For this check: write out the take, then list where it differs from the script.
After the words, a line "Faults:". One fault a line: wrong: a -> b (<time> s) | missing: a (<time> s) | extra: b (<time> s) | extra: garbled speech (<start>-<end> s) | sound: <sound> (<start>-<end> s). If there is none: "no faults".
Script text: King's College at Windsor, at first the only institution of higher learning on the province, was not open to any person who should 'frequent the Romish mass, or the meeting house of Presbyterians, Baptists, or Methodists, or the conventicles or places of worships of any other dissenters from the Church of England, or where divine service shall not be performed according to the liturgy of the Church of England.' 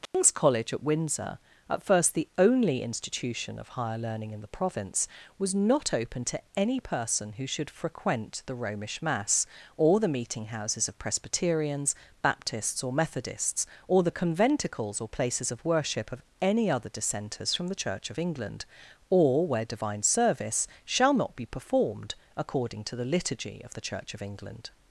King's College at Windsor, at first the only institution of higher learning in the province, was not open to any person who should 'frequent the Romish mass, or the meeting houses of Presbyterians, Baptists, or Methodists, or the conventicles or places of worship of any other dissenters from the Church of England, or where divine service shall not be performed according to the liturgy of the Church of England.'
Faults:
sound: dropout (0.1-0.1 s)
wrong: on -> in (4.3 s)
wrong: house -> houses (10.5 s)
wrong: worships -> worship (15.6 s)